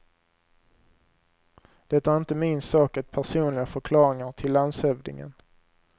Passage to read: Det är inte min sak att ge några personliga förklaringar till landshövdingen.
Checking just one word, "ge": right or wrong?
wrong